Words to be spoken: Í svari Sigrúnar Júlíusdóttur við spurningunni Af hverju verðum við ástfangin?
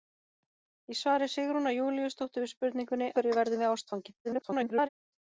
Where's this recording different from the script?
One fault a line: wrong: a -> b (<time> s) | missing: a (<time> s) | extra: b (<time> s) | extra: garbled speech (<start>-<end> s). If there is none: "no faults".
missing: Af (3.1 s)
extra: garbled speech (4.2-4.9 s)